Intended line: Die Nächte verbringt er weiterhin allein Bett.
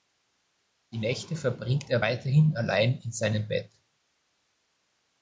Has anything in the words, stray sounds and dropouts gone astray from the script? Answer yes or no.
yes